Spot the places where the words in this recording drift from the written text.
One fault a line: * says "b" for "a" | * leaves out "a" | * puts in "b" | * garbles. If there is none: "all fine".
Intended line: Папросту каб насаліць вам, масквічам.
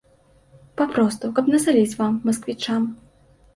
all fine